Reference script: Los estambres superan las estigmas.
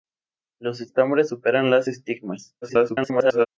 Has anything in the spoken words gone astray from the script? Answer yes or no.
yes